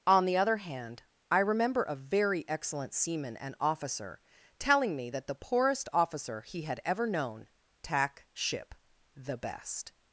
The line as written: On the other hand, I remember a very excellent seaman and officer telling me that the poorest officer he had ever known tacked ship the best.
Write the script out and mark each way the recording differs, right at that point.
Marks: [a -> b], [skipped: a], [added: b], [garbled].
On the other hand, I remember a very excellent seaman and officer telling me that the poorest officer he had ever known [tacked -> tack] ship the best.